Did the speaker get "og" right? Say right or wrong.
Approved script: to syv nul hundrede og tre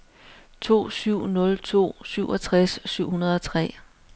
right